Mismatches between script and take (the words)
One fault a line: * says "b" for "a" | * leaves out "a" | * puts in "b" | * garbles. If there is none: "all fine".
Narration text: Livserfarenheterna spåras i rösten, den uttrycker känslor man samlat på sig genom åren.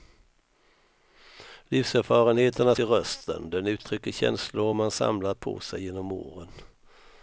* leaves out "spåras"